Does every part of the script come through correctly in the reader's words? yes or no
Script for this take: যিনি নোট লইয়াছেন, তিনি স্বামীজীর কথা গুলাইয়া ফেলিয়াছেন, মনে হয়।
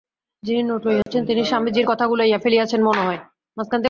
yes